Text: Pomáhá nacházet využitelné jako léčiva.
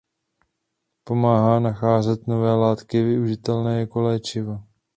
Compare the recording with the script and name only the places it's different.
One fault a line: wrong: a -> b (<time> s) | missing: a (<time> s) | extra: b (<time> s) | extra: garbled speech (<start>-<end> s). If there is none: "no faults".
extra: nové látky (2.3 s)